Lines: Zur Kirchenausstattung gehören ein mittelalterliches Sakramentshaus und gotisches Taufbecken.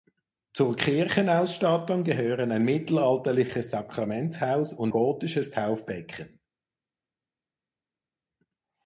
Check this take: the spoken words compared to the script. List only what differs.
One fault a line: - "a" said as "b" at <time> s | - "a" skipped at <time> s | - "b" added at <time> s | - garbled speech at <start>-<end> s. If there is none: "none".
none